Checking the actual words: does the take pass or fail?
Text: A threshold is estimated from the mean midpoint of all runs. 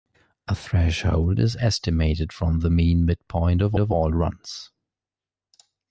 fail